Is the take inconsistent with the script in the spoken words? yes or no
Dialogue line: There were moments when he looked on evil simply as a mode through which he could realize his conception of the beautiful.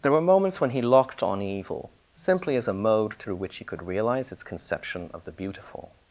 yes